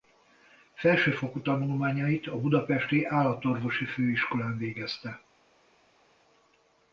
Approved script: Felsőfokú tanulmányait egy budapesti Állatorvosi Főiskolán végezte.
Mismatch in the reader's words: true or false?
true